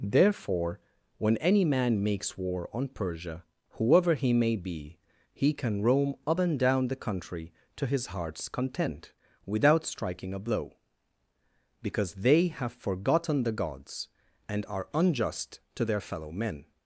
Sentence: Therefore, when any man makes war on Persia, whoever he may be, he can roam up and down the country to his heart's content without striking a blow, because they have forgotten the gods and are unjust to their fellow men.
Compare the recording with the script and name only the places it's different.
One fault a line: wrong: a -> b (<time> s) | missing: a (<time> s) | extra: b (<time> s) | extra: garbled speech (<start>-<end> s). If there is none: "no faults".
no faults